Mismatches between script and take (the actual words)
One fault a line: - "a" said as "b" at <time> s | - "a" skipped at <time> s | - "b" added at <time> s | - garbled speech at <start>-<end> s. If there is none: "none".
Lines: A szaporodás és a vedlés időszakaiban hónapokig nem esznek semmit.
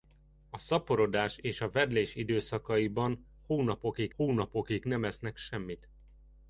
- "hónapokig" added at 4.1 s